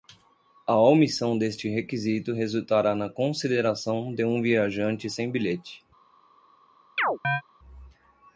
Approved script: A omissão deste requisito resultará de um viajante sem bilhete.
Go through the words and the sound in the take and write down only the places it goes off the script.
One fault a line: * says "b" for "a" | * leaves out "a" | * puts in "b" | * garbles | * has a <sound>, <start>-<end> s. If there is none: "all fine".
* puts in "na consideração"
* has a chirp, 7.0-7.4 s